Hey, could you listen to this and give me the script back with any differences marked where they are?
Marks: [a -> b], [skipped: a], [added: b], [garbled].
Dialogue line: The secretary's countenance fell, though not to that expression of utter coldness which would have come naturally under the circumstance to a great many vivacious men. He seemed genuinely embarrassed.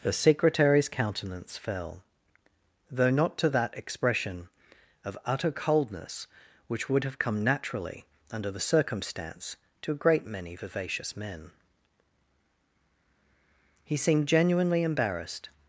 The secretary's countenance fell, though not to that expression of utter coldness which would have come naturally under the circumstance to a great many vivacious men. He seemed genuinely embarrassed.